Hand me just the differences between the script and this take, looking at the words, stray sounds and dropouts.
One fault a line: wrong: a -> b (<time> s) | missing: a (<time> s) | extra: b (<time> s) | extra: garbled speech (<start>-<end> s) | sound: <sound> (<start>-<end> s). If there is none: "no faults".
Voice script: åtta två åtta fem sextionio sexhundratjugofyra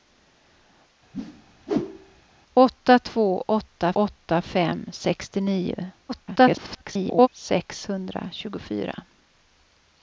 sound: whoosh (1.1-2.2 s)
extra: åtta (3.9 s)
extra: garbled speech (6.1-7.3 s)